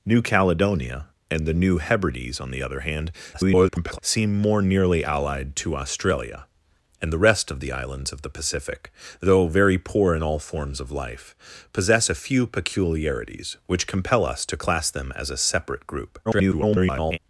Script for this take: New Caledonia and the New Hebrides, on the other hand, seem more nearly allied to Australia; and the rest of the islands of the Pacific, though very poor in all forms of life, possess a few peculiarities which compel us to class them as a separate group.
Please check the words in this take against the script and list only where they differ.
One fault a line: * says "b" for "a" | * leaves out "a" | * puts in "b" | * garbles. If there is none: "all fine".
* garbles
* garbles